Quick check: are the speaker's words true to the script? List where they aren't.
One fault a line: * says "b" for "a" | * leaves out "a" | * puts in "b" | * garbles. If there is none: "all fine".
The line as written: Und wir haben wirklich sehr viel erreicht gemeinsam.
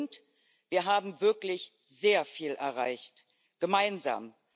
all fine